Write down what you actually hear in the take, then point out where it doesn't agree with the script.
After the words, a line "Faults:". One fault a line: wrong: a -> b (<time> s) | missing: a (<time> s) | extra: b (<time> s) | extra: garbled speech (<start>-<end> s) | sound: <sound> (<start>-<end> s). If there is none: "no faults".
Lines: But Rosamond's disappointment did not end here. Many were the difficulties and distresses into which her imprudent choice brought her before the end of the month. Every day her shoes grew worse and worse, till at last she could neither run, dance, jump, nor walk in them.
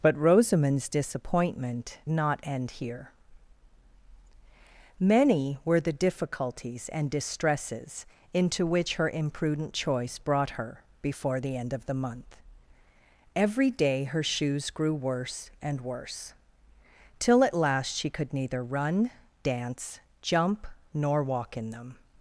But Rosamond's disappointment not end here. Many were the difficulties and distresses into which her imprudent choice brought her before the end of the month. Every day her shoes grew worse and worse, till at last she could neither run, dance, jump, nor walk in them.
Faults:
missing: did (2.0 s)